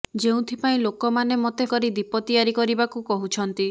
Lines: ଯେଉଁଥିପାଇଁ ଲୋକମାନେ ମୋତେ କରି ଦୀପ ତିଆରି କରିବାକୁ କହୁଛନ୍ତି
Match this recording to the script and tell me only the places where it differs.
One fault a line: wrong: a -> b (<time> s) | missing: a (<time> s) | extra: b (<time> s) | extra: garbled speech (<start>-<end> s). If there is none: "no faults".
no faults